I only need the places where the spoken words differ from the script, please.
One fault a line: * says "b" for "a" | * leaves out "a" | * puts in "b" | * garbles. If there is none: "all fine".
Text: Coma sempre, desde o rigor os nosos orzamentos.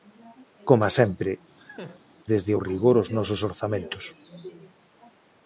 all fine